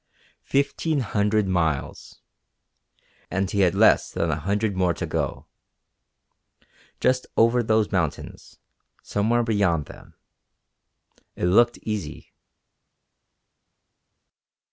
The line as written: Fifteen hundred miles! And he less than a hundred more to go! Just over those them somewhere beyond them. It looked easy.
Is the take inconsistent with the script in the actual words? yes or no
yes